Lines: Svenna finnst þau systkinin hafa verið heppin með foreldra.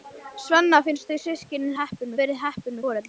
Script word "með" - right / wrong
wrong